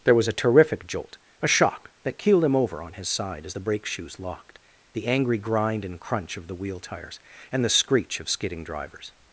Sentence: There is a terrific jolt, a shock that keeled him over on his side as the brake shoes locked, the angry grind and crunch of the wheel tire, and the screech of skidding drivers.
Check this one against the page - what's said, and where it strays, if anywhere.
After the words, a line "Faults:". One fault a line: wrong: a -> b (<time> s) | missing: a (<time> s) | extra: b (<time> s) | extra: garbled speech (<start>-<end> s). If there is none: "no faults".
There was a terrific jolt, a shock that keeled him over on his side as the brake shoes locked, the angry grind and crunch of the wheel tires, and the screech of skidding drivers.
Faults:
wrong: is -> was (0.1 s)
wrong: tire -> tires (6.8 s)